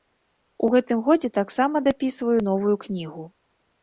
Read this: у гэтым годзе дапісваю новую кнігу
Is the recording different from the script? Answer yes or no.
yes